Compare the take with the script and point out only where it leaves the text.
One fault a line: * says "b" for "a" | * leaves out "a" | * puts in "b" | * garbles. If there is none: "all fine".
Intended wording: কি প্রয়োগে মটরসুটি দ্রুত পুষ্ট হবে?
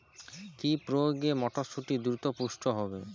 all fine